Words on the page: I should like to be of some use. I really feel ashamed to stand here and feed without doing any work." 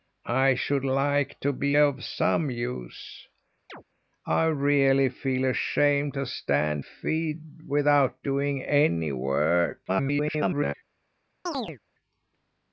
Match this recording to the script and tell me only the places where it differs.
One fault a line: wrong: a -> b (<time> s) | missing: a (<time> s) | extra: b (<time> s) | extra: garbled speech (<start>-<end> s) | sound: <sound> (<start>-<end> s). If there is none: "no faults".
sound: chirp (3.7-3.8 s)
missing: here and (6.8 s)
extra: garbled speech (9.9-10.7 s)
sound: chirp (11.5-11.8 s)